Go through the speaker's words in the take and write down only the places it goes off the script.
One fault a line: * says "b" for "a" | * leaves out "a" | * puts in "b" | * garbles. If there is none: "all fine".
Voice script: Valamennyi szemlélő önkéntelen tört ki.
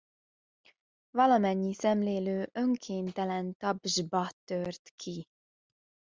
* puts in "tapsba"